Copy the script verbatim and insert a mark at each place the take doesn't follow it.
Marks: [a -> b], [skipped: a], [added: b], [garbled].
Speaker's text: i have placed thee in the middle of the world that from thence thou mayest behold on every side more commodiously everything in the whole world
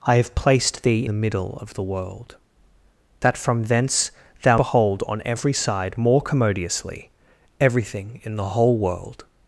i have placed thee [skipped: in] the middle of the world that from thence thou [skipped: mayest] behold on every side more commodiously everything in the whole world